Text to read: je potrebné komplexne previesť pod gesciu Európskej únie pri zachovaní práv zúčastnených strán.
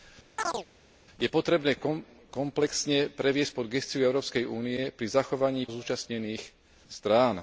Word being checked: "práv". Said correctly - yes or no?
no